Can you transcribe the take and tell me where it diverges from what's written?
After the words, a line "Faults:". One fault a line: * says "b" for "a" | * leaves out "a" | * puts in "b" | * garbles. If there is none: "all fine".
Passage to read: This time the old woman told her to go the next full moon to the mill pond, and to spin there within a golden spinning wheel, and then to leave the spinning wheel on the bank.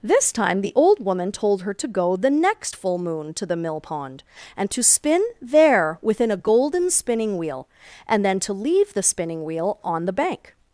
This time the old woman told her to go the next full moon to the mill pond, and to spin there within a golden spinning wheel, and then to leave the spinning wheel on the bank.
Faults:
all fine